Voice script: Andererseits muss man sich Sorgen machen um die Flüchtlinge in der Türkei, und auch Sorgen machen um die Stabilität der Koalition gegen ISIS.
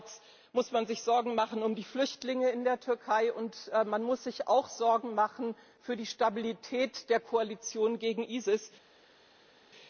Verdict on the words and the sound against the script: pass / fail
fail